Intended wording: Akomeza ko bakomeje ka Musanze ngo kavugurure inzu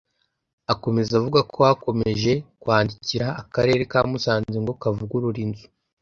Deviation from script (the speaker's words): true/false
true